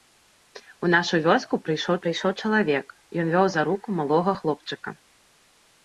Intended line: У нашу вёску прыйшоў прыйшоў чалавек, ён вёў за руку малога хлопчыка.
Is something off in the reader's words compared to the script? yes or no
no